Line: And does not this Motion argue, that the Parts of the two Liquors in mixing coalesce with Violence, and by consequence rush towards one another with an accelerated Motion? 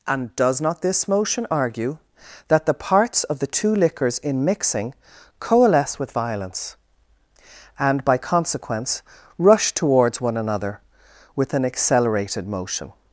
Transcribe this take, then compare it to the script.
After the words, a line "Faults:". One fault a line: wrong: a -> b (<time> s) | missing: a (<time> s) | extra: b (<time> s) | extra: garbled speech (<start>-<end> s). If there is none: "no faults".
And does not this Motion argue, that the Parts of the two Liquors in mixing coalesce with Violence, and by consequence rush towards one another with an accelerated Motion?
Faults:
no faults